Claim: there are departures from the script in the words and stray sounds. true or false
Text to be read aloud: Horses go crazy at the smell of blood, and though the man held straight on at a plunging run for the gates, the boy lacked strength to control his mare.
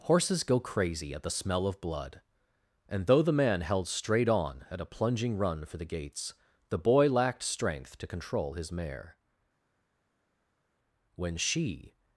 true